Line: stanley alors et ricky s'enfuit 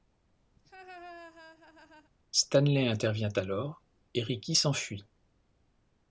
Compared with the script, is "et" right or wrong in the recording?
right